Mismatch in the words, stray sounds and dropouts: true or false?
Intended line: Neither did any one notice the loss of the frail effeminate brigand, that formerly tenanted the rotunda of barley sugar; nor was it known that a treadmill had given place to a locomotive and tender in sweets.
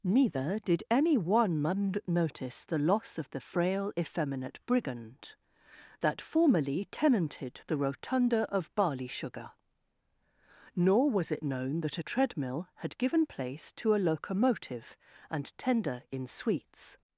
false